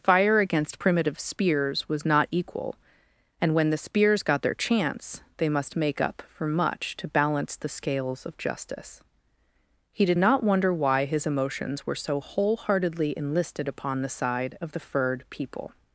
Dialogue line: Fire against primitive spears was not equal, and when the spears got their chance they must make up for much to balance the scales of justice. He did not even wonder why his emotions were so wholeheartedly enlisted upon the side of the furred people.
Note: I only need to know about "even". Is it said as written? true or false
false